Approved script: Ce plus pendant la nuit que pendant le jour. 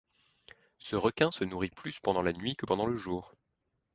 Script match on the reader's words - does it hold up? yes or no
no